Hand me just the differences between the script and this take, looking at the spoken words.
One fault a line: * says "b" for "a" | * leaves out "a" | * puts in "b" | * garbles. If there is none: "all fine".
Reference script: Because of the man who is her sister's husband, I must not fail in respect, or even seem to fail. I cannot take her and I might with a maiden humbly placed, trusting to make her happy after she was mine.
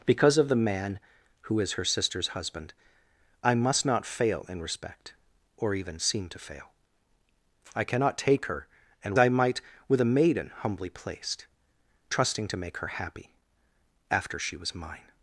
all fine